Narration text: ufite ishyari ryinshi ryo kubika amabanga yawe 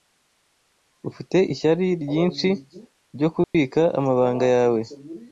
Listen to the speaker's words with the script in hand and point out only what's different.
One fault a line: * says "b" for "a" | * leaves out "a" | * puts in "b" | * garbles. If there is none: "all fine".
all fine